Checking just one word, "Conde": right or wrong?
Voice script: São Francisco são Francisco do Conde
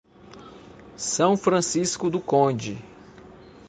right